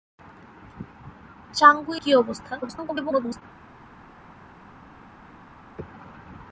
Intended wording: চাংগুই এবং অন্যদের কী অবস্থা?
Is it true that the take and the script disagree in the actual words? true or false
true